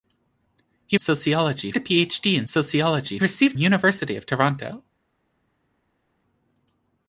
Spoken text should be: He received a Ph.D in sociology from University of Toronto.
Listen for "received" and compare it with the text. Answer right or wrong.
wrong